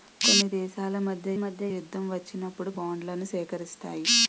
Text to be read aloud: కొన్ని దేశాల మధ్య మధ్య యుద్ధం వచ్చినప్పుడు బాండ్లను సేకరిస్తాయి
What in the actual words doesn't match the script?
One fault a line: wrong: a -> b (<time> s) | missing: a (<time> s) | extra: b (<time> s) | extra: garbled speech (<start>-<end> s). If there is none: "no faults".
no faults